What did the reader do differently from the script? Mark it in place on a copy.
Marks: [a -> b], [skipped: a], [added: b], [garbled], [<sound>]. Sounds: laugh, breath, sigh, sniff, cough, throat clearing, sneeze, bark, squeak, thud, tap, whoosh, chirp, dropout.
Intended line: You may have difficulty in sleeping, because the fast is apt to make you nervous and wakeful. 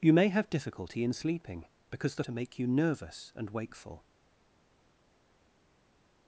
You may have difficulty in sleeping, because the [skipped: fast is apt] to make you nervous and wakeful.